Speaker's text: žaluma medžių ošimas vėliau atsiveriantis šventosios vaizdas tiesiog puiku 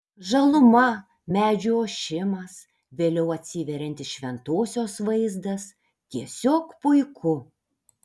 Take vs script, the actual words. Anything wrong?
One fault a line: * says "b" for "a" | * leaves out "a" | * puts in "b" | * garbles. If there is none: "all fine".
all fine